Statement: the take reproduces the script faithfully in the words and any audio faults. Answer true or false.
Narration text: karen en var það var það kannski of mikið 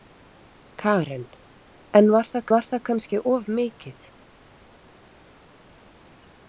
true